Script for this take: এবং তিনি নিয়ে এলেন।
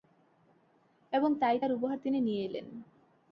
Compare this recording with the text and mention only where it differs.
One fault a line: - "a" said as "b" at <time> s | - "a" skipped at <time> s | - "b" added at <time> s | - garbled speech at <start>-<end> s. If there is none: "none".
- "তাই তার উপহার" added at 1.4 s